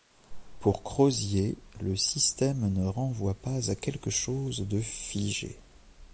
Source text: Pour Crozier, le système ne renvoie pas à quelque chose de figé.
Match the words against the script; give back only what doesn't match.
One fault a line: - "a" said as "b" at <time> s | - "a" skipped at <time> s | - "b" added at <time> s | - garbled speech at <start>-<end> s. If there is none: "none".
none